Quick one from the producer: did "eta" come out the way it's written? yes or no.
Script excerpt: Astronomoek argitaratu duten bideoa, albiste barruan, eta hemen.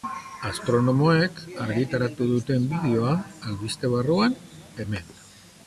no